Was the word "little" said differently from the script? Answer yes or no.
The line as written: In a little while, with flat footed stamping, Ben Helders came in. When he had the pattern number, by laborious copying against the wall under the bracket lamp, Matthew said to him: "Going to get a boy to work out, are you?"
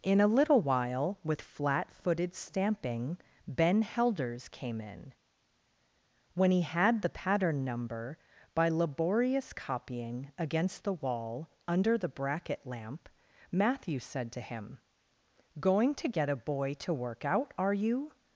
no